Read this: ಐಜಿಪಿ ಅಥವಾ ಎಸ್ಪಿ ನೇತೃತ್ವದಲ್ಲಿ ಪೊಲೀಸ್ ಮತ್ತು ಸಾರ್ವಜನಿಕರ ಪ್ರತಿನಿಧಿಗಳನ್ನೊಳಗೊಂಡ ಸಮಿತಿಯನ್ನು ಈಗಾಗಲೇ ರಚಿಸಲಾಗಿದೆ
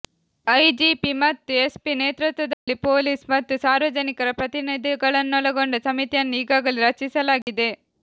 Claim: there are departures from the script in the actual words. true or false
true